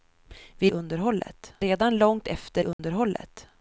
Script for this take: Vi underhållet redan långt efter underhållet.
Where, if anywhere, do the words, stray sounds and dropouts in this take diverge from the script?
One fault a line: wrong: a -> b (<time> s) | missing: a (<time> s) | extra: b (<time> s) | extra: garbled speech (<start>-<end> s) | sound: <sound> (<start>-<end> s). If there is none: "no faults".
sound: dropout (2.7-2.8 s)